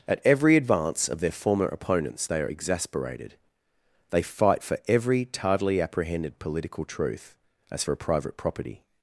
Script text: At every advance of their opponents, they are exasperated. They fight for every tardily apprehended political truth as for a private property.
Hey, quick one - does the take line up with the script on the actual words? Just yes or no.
no